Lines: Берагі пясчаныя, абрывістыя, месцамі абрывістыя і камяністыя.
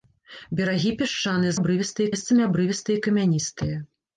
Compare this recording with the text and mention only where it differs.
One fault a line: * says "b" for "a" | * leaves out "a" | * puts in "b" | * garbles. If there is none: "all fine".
all fine